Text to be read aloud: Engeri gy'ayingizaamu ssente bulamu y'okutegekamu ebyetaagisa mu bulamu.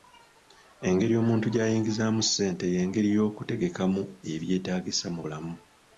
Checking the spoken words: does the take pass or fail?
fail